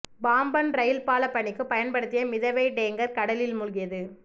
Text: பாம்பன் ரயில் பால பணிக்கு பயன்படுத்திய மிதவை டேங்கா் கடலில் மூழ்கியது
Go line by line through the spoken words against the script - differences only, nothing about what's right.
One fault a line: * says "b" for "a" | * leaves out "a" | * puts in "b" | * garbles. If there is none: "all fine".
all fine